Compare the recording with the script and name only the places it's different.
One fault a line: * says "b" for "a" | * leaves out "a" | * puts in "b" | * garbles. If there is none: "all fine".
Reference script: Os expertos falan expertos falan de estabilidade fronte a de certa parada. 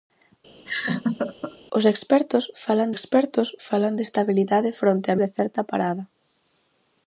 all fine